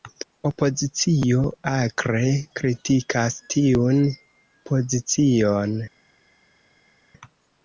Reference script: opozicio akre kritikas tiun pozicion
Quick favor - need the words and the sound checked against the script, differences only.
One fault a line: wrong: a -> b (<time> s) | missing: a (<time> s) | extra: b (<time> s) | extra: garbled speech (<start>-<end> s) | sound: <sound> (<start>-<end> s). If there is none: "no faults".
no faults